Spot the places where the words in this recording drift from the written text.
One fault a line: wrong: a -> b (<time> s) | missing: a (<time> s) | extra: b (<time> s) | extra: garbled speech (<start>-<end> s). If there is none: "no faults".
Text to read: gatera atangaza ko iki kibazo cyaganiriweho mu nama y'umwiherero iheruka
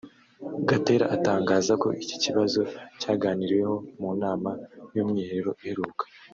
no faults